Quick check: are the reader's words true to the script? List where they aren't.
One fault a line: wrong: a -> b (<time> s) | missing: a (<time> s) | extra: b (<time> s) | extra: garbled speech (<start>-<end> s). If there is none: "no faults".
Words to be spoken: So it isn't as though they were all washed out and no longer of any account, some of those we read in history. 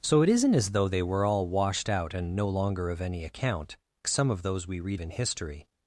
no faults